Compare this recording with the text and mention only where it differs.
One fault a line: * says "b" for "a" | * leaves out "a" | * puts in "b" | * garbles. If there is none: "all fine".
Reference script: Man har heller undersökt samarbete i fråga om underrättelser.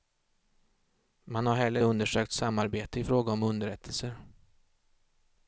all fine